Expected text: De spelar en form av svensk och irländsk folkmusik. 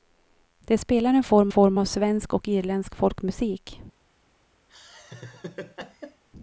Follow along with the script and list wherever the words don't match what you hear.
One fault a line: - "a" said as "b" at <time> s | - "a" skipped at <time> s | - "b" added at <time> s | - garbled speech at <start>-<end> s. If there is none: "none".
- "form" added at 1.5 s